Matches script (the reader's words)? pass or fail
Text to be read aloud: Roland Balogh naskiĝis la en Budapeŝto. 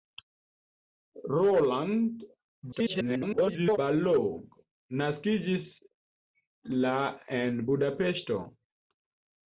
fail